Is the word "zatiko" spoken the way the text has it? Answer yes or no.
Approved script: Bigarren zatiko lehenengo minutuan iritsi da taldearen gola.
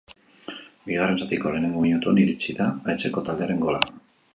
yes